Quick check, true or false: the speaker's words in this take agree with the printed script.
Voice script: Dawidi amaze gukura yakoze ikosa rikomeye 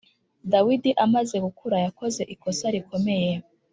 true